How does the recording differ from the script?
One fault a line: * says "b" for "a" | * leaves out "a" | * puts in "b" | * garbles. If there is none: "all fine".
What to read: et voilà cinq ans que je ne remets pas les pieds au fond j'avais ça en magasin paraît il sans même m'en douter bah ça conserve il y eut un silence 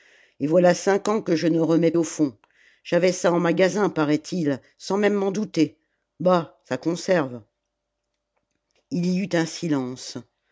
* leaves out "pas les pieds"